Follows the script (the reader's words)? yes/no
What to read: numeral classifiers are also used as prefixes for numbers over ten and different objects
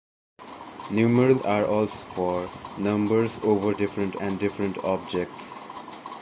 no